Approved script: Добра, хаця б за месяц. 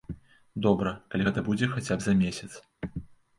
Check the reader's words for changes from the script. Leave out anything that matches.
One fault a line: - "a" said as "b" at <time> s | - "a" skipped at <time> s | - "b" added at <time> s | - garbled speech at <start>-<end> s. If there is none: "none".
- "калі гэта будзе" added at 1.1 s